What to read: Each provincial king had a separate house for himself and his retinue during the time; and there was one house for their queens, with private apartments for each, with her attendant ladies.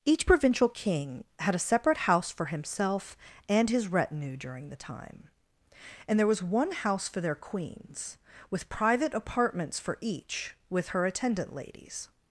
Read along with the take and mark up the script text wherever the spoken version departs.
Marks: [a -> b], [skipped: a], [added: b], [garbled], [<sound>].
Each provincial king had a separate house for himself and his retinue during the time; and there was one house for their queens, with private apartments for each, with her attendant ladies.